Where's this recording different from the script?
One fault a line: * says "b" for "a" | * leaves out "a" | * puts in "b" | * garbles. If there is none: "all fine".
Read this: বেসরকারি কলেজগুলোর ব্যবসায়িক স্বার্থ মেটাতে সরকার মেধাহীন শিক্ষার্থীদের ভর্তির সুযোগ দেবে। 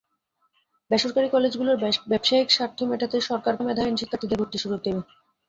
all fine